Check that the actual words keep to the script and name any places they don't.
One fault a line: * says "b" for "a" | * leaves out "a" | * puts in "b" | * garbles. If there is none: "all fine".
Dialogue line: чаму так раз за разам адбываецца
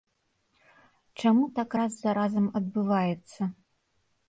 all fine